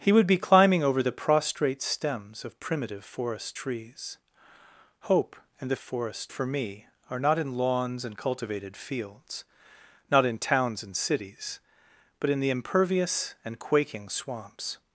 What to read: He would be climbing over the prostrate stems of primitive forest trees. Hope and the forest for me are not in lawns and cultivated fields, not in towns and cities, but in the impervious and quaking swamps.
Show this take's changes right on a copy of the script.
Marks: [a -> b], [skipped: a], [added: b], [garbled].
He would be climbing over the prostrate stems of primitive forest trees. Hope and the forest for me are not in lawns and cultivated fields, not in towns and cities, but in the impervious and quaking swamps.